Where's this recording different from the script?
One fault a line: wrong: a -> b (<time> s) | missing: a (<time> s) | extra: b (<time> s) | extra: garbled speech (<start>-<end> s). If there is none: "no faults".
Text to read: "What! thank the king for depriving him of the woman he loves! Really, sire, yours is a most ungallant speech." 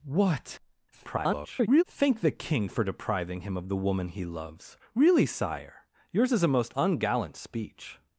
extra: garbled speech (0.9-1.8 s)